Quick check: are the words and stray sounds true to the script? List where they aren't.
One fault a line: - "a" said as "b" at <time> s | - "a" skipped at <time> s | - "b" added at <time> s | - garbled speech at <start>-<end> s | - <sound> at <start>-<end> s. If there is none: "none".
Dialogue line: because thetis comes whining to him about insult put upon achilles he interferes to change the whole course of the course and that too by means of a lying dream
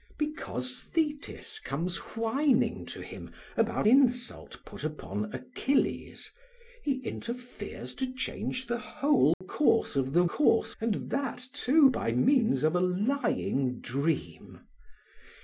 - dropout at 9.3-9.4 s